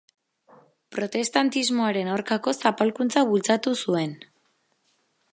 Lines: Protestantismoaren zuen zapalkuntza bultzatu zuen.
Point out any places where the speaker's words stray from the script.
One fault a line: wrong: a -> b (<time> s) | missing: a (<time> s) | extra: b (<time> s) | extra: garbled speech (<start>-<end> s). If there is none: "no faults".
wrong: zuen -> aurkako (2.1 s)